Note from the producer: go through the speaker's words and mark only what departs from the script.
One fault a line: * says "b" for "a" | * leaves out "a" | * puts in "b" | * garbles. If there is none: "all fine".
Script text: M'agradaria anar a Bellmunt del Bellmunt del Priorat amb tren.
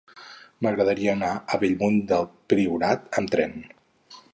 * leaves out "Bellmunt del"